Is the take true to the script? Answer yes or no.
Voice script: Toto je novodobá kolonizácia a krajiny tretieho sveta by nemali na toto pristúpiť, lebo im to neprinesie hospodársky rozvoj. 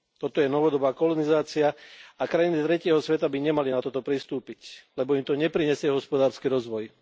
yes